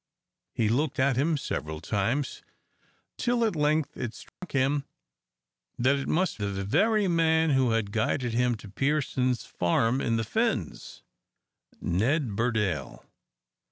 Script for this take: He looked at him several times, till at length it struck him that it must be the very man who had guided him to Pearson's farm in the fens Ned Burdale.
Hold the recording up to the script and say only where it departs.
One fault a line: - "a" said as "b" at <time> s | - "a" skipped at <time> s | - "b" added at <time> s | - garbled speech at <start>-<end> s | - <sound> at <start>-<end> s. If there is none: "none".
- dropout at 4.3-4.4 s
- "be" skipped at 6.4 s